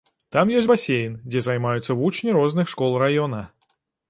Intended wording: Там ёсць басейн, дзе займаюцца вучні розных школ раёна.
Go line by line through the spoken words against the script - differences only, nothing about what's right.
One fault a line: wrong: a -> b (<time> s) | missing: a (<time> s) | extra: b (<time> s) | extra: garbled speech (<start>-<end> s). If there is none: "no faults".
no faults